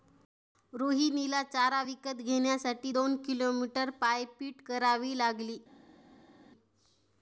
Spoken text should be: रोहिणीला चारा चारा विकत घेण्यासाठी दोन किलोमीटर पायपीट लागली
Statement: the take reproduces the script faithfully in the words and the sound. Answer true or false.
false